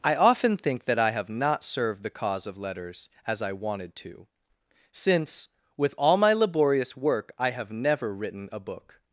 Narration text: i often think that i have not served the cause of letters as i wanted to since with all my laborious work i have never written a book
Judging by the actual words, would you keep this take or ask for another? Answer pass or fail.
pass